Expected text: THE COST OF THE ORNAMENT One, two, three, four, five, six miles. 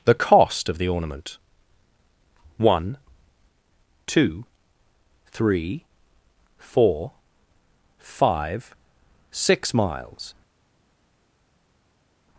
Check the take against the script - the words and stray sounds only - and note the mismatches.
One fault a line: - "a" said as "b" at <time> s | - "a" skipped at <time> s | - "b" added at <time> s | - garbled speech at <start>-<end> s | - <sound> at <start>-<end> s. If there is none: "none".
none